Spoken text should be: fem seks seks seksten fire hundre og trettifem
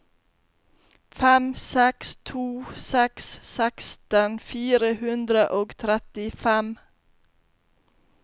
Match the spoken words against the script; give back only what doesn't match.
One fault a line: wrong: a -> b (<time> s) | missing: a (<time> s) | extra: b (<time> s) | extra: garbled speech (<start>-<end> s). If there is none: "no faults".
extra: to (2.3 s)